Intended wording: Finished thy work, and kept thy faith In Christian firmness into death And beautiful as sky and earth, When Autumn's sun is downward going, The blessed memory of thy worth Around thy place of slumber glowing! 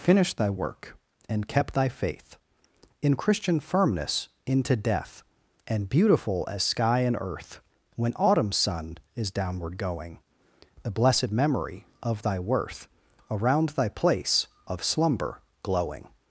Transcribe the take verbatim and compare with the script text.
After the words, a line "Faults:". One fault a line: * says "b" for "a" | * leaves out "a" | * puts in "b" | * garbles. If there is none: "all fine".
Finished thy work, and kept thy faith In Christian firmness into death And beautiful as sky and earth, When Autumn's sun is downward going, The blessed memory of thy worth Around thy place of slumber glowing!
Faults:
all fine